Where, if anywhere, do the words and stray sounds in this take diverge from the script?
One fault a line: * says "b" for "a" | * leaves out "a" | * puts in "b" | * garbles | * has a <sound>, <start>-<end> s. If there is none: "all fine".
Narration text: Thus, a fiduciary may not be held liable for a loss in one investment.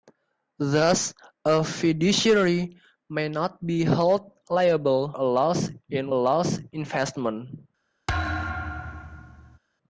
* leaves out "for"
* says "loss" for "one"
* has a thud, 8.1-9.6 s